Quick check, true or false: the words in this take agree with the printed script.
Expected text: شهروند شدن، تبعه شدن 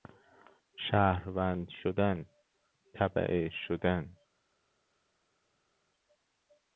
true